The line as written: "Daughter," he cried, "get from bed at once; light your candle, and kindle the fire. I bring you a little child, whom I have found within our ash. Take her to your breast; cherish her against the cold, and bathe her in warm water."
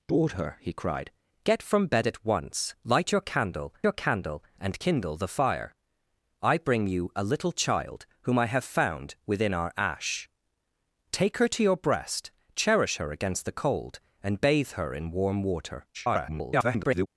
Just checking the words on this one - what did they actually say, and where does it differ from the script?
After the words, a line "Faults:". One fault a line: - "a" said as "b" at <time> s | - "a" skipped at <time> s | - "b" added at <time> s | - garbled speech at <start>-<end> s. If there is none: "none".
"Daughter," he cried, "get from bed at once; light your candle your candle, and kindle the fire. I bring you a little child, whom I have found within our ash. Take her to your breast; cherish her against the cold, and bathe her in warm water." [garbled]
Faults:
- "your candle" added at 3.8 s
- garbled speech at 15.9-17.1 s